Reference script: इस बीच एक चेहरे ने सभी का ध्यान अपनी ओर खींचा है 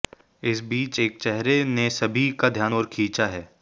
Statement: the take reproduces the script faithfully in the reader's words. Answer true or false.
false